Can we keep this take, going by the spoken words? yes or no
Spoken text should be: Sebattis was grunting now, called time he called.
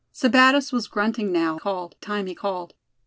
yes